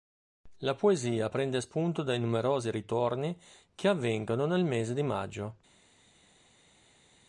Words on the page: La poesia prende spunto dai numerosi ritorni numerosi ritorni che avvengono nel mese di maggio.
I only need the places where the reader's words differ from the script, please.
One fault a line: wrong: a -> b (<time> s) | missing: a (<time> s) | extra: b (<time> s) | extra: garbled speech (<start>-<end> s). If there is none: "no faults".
missing: numerosi ritorni (3.4 s)